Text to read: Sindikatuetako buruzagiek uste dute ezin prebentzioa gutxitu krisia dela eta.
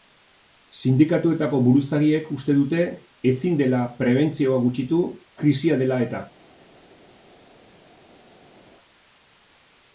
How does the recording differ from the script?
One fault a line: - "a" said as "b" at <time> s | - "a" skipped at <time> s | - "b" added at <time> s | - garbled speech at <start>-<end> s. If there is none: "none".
- "dela" added at 3.6 s